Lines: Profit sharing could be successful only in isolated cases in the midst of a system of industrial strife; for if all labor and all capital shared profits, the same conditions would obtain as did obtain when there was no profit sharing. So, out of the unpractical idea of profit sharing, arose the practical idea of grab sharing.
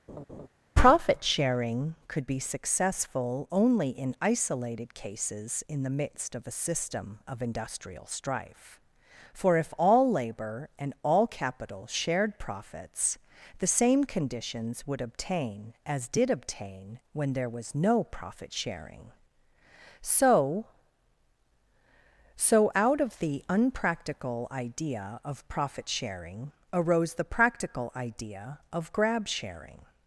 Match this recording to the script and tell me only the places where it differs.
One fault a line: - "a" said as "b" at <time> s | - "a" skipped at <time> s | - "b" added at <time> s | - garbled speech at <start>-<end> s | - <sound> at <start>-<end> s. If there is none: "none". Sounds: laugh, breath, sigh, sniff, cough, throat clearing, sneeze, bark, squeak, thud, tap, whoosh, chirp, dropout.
- laugh at 0.1-0.5 s
- "So" added at 22.4 s